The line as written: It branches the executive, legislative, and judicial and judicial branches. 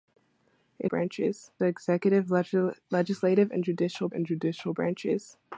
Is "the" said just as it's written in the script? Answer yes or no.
yes